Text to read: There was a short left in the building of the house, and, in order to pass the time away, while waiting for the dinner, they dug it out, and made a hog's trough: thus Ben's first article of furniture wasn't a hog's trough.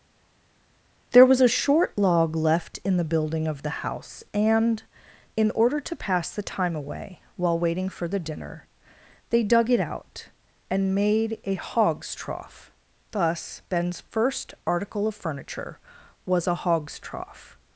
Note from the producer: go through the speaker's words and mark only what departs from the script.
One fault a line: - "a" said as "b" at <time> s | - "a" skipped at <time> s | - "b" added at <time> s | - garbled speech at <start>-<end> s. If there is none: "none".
- "log" added at 2.0 s
- "wasn't" said as "was" at 16.2 s